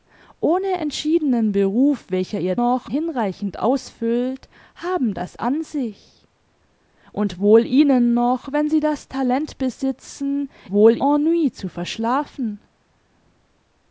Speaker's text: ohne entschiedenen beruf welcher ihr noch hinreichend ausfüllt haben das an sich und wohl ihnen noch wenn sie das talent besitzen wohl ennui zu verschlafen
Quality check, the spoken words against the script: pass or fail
pass